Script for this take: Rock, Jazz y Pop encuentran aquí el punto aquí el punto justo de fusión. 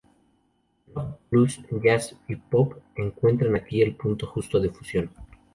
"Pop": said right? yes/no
yes